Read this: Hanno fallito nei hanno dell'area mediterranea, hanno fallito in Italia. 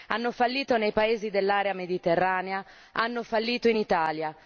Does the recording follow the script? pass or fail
fail